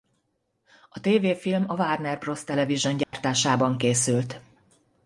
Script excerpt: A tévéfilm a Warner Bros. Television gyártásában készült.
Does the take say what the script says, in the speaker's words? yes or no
yes